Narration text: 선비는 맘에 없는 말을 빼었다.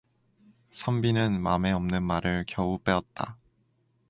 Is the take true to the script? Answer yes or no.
no